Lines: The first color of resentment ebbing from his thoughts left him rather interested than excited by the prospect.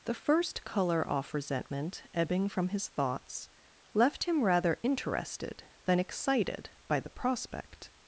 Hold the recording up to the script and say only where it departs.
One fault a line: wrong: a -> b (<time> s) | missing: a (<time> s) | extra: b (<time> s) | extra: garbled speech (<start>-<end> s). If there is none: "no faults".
wrong: of -> off (1.1 s)